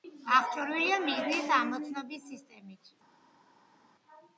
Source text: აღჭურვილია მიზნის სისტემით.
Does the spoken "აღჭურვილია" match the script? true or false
true